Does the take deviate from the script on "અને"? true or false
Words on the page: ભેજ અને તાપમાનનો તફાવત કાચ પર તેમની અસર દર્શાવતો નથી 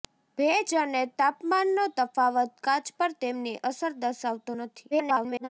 false